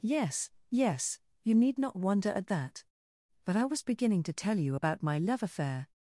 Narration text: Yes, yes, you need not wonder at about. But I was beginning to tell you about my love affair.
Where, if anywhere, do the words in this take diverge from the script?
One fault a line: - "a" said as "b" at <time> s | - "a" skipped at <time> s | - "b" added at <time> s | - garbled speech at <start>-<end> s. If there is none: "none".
- "about" said as "that" at 2.5 s